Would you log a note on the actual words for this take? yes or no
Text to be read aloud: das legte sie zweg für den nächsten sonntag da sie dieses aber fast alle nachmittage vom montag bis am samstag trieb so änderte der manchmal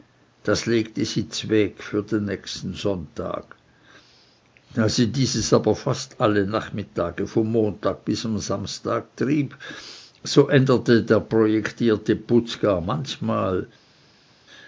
yes